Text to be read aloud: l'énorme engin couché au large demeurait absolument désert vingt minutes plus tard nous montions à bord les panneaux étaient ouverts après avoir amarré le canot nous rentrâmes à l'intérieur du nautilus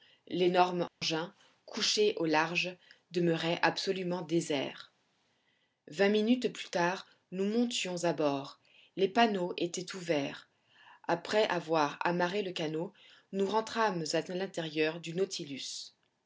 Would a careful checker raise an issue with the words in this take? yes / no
no